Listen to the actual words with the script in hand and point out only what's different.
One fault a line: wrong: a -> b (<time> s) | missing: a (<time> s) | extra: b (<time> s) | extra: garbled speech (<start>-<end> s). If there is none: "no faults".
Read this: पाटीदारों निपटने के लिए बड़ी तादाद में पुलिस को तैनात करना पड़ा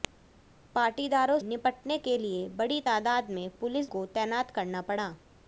no faults